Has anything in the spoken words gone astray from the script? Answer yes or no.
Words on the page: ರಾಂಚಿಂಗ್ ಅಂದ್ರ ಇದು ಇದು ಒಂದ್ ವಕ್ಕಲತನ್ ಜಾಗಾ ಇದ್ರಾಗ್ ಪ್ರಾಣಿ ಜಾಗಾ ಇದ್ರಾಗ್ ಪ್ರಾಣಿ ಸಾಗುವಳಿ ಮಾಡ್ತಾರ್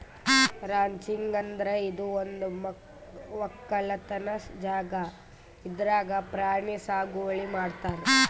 yes